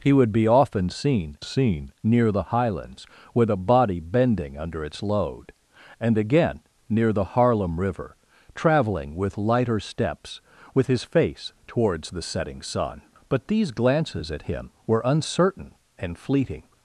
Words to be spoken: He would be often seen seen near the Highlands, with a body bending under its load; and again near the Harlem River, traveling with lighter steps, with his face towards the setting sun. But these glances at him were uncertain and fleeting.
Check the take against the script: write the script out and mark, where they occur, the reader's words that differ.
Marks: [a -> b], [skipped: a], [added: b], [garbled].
He would be often seen seen near the Highlands, with a body bending under its load; and again near the Harlem River, traveling with lighter steps, with his face towards the setting sun. But these glances at him were uncertain and fleeting.